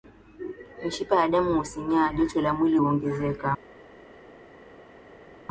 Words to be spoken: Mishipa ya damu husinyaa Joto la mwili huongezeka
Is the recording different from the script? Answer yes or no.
no